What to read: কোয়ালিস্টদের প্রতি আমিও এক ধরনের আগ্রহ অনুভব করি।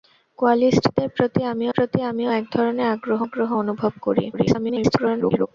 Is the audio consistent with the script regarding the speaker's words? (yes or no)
no